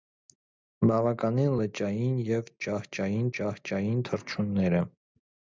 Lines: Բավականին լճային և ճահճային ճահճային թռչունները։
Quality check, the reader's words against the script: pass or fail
pass